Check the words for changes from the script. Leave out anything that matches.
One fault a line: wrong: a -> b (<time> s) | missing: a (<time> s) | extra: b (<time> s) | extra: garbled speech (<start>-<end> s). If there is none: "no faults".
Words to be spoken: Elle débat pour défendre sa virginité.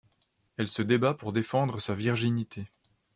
extra: se (0.7 s)